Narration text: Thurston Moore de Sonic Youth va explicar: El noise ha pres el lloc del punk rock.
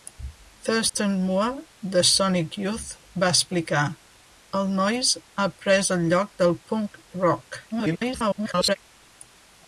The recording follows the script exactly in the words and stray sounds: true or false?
false